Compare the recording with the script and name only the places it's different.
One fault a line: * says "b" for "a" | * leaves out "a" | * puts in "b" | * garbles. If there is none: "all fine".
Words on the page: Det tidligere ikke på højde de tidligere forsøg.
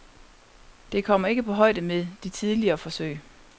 * says "kommer" for "tidligere"
* puts in "med"